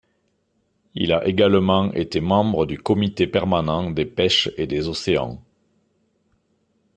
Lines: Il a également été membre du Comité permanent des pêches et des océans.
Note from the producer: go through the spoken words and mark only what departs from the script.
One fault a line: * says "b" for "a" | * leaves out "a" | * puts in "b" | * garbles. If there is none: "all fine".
all fine